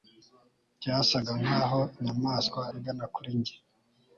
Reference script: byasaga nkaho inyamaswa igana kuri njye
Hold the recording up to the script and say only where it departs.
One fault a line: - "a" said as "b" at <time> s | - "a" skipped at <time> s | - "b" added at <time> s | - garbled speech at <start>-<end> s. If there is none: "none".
none